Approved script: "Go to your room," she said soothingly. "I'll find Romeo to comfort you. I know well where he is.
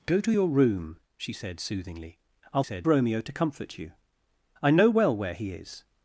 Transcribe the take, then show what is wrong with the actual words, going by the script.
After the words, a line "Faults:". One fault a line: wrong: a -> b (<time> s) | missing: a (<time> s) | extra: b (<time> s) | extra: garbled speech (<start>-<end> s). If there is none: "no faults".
"Go to your room," she said soothingly. "I'll said Romeo to comfort you. I know well where he is.
Faults:
wrong: find -> said (2.6 s)